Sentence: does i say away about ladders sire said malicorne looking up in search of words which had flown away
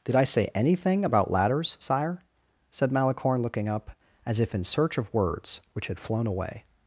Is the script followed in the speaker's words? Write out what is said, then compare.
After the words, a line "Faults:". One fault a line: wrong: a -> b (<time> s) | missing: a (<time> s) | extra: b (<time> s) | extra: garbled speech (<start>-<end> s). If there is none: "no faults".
did i say anything about ladders sire said malicorne looking up as if in search of words which had flown away
Faults:
wrong: does -> did (0.0 s)
wrong: away -> anything (0.5 s)
extra: as if (4.3 s)